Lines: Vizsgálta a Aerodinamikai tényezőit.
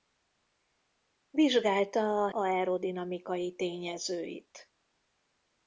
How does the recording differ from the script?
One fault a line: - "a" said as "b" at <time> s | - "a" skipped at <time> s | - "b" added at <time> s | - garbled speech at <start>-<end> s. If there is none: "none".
none